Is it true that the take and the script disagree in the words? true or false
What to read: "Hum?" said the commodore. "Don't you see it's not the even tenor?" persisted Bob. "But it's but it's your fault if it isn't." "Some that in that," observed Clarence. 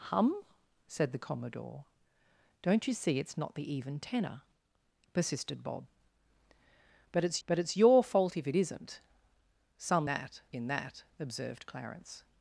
false